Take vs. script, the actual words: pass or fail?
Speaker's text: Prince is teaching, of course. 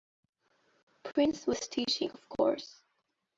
fail